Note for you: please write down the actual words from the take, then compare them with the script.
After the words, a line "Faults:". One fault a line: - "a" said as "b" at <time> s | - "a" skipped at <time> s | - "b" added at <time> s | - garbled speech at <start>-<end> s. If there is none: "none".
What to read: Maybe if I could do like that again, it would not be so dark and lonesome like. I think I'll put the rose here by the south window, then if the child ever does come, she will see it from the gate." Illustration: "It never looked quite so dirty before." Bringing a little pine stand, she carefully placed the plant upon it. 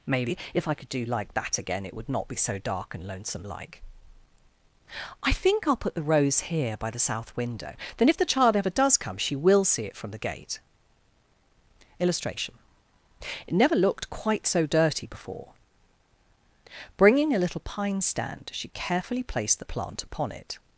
Maybe if I could do like that again, it would not be so dark and lonesome like. I think I'll put the rose here by the south window, then if the child ever does come, she will see it from the gate." Illustration: "It never looked quite so dirty before." Bringing a little pine stand, she carefully placed the plant upon it.
Faults:
none